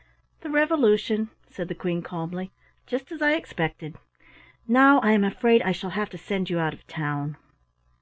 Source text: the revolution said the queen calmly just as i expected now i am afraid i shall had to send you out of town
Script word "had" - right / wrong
wrong